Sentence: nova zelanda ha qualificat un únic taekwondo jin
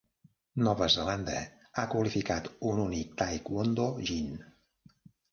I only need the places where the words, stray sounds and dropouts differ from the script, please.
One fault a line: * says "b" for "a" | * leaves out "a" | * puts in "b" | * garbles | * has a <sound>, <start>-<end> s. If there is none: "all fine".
all fine